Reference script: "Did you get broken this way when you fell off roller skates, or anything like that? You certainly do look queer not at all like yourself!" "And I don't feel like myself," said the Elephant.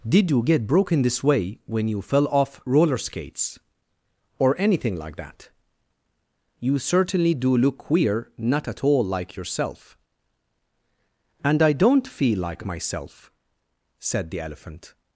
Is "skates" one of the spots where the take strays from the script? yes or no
no